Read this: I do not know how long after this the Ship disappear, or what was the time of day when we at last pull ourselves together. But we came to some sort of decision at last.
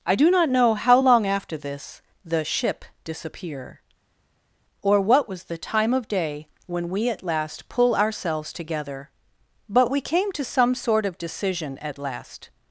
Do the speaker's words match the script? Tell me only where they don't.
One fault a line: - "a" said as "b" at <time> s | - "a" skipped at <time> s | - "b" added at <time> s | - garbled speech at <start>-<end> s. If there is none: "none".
none